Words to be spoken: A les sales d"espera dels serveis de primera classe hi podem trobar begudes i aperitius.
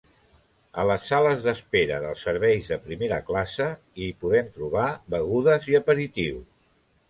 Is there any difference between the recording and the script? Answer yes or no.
no